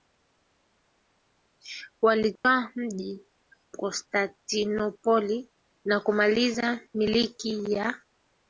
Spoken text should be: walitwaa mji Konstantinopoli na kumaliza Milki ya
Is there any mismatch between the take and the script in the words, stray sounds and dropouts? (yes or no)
yes